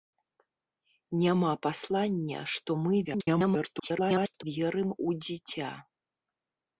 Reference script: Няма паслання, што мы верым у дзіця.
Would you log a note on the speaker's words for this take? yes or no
yes